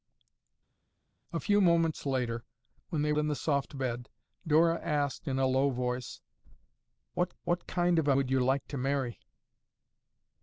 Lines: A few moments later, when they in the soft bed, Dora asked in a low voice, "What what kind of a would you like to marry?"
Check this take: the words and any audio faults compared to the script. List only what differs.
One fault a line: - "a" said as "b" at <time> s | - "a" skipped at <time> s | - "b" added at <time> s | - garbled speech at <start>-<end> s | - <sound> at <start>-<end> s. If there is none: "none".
none